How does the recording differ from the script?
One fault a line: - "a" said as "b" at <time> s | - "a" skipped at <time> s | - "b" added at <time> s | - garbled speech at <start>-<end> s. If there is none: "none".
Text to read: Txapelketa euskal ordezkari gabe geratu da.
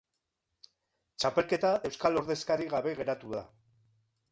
none